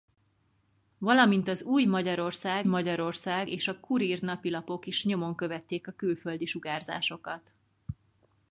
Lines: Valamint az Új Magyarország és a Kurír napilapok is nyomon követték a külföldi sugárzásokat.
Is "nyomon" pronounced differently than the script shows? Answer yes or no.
no